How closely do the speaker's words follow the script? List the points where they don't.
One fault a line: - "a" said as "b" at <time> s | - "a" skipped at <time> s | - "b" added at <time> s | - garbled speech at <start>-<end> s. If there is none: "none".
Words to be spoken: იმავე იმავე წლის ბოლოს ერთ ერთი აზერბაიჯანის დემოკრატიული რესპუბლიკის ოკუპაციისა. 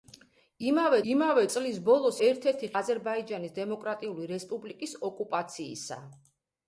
none